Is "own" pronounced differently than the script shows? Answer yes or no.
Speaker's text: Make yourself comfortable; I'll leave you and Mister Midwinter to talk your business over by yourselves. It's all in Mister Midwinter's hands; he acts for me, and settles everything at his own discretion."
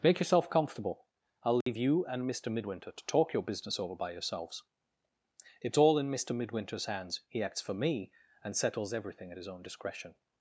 no